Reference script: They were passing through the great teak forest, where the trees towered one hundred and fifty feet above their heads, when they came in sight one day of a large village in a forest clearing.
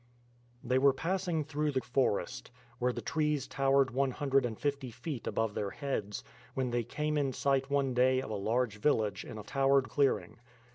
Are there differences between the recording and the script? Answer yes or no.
yes